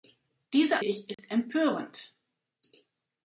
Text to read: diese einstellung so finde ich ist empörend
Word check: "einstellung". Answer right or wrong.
wrong